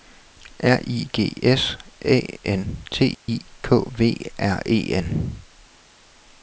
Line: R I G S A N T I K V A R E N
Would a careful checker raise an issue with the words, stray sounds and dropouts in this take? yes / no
yes